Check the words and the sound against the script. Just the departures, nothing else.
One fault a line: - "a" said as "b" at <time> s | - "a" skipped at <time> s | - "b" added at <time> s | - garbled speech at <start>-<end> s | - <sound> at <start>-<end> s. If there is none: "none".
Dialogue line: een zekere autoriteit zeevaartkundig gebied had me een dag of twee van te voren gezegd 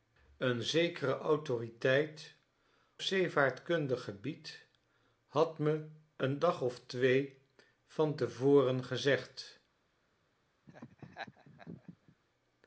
- laugh at 10.7-12.2 s